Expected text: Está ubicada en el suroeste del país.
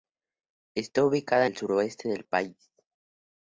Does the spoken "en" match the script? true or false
false